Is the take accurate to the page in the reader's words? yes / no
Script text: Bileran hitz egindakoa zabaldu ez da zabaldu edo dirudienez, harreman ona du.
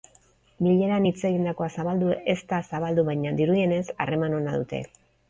no